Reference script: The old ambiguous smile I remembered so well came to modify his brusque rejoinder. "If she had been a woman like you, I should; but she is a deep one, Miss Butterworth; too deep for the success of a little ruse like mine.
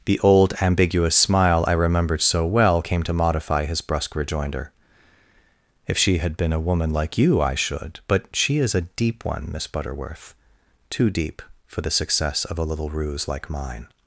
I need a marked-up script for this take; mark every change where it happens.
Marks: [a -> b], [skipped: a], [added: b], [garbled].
The old ambiguous smile I remembered so well came to modify his brusque rejoinder. "If she had been a woman like you, I should; but she is a deep one, Miss Butterworth; too deep for the success of a little ruse like mine.